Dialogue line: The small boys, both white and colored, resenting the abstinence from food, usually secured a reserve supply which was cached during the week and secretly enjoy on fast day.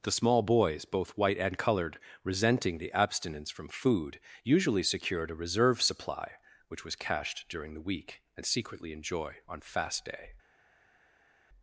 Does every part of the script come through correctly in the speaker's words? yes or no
yes